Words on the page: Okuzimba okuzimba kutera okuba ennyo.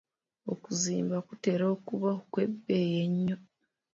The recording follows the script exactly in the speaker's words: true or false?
false